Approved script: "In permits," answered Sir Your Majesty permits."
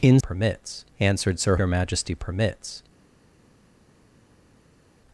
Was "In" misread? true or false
false